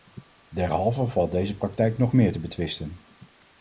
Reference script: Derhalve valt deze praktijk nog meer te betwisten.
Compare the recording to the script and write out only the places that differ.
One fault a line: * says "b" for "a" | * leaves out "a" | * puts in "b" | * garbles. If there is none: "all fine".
all fine